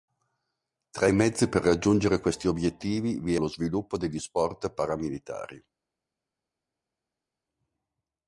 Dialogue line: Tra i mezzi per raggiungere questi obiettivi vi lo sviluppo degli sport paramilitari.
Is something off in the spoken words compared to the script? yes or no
no